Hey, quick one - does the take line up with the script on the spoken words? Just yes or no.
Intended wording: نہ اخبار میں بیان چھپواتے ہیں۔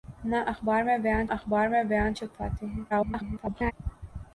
no